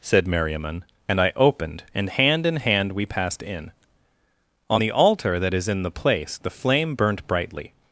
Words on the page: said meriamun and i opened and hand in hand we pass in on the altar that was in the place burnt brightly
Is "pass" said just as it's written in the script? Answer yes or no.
no